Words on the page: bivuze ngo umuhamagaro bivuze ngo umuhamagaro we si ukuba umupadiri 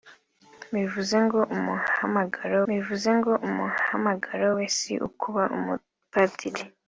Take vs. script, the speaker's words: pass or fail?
pass